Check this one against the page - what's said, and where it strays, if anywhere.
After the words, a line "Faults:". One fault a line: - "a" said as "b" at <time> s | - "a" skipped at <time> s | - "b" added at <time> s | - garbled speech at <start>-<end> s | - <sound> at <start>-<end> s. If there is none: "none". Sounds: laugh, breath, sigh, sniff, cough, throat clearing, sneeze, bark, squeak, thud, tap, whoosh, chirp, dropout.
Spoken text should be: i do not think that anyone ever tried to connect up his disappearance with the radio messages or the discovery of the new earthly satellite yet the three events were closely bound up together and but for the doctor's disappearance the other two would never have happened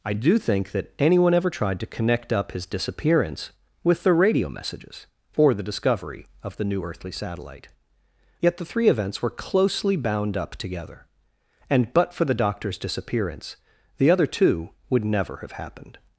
i do think that anyone ever tried to connect up his disappearance with the radio messages or the discovery of the new earthly satellite yet the three events were closely bound up together and but for the doctor's disappearance the other two would never have happened
Faults:
- "not" skipped at 0.4 s